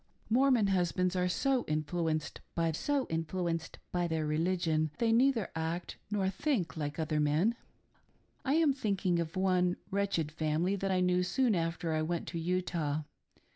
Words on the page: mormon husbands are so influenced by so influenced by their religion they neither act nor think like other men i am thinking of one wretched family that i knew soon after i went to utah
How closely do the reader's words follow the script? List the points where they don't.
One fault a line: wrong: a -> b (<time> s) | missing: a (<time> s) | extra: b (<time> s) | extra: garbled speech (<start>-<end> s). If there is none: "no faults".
no faults